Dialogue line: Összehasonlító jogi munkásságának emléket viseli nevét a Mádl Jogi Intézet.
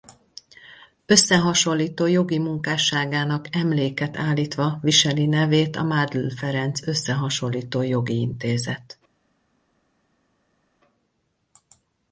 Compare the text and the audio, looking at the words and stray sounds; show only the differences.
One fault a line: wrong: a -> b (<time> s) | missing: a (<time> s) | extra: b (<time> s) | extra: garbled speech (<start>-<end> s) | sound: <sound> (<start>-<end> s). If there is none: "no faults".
extra: állítva (4.2 s)
extra: Ferenc Összehasonlító (6.3 s)